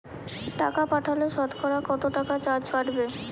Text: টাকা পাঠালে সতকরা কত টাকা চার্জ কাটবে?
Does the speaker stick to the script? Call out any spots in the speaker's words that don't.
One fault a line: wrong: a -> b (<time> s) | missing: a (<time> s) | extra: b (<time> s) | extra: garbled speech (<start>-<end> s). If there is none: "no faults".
no faults